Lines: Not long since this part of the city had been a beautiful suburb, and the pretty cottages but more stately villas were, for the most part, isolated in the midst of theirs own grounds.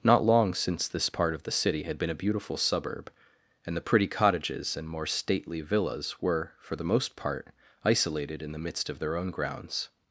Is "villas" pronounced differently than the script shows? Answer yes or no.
no